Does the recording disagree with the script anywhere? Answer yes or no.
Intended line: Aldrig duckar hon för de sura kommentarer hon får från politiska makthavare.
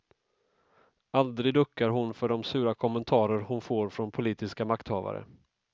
no